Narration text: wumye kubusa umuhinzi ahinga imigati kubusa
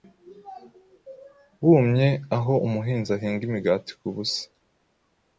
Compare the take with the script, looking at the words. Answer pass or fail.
fail